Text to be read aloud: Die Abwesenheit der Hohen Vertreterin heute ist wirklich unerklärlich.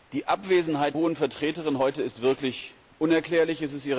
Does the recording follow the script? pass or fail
fail